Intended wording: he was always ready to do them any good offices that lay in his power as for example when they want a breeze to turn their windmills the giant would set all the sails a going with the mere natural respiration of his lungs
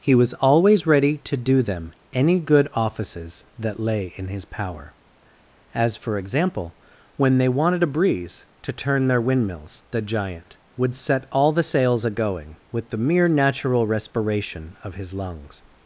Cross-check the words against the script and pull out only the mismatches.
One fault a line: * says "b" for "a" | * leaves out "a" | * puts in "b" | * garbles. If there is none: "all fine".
* says "wanted" for "want"